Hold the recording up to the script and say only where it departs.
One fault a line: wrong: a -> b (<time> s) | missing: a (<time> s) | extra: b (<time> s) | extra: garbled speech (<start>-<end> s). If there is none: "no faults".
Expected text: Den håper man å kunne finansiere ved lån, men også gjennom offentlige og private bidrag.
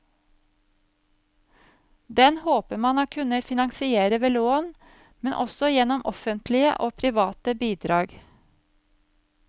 no faults